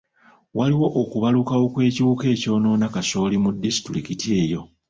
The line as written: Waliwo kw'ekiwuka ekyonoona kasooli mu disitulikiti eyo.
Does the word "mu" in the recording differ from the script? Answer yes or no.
no